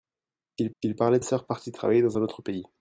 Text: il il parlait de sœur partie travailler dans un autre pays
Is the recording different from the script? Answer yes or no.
no